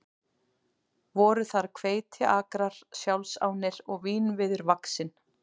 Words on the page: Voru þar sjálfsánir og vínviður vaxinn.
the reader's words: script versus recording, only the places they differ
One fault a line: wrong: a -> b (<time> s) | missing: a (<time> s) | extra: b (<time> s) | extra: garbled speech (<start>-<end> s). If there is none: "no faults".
extra: hveitiakrar (1.8 s)